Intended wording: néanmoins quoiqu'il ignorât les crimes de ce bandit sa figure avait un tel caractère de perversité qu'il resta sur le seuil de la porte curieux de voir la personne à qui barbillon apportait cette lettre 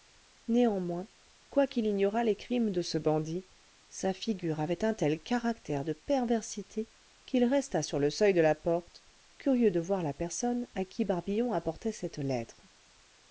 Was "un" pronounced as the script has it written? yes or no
yes